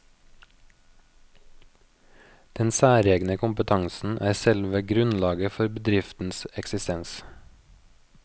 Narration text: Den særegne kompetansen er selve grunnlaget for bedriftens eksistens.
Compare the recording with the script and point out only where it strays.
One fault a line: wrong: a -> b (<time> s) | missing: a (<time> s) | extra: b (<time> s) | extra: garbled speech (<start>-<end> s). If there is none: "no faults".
no faults